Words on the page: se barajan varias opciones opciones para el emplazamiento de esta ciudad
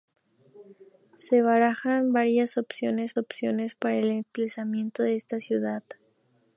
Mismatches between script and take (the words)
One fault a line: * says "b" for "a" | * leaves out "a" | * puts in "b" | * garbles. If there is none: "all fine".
all fine